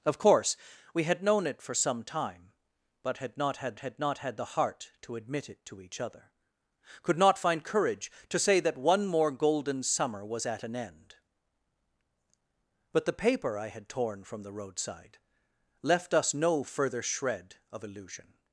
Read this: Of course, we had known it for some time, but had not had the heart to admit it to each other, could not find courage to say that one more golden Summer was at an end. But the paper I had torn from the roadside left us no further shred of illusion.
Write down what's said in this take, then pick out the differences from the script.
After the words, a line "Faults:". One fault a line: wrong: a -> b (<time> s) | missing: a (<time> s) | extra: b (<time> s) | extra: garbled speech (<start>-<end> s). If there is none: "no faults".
Of course, we had known it for some time, but had not had had not had the heart to admit it to each other, could not find courage to say that one more golden Summer was at an end. But the paper I had torn from the roadside left us no further shred of illusion.
Faults:
extra: had not had (3.8 s)